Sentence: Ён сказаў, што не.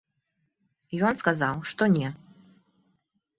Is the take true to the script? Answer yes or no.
yes